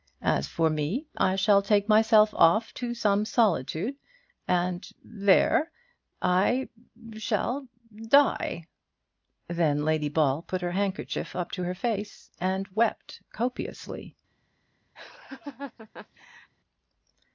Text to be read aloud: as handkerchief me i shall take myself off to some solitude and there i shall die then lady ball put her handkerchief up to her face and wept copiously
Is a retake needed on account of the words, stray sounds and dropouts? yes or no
yes